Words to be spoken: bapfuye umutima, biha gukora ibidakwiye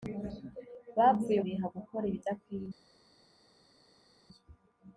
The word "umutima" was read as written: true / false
false